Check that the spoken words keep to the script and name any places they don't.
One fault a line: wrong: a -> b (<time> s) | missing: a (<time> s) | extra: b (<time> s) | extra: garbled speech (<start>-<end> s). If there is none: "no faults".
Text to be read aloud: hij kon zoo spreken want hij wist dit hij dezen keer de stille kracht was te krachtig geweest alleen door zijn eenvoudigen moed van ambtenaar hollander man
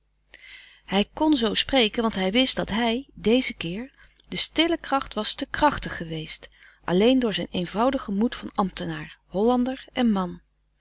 wrong: dit -> dat (2.6 s)
extra: en (9.9 s)